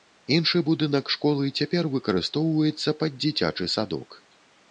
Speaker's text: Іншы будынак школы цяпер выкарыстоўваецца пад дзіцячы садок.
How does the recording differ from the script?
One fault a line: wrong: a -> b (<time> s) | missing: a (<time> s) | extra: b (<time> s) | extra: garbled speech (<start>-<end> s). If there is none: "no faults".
no faults